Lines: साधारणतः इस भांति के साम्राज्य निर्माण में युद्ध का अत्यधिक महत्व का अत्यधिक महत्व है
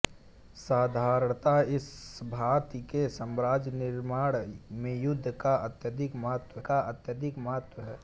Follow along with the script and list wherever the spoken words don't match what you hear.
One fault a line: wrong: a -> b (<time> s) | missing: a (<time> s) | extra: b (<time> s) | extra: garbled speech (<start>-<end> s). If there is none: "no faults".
no faults